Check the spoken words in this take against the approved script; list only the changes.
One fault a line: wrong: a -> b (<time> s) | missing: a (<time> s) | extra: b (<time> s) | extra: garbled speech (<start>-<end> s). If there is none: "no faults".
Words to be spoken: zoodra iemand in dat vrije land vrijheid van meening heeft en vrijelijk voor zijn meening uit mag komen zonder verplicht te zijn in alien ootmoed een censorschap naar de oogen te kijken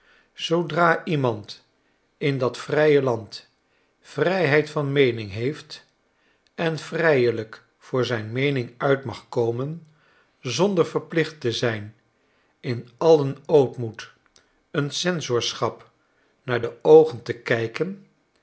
no faults